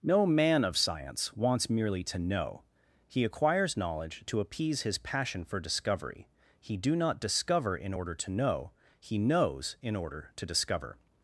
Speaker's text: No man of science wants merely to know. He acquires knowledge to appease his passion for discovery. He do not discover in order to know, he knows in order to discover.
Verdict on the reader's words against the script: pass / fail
pass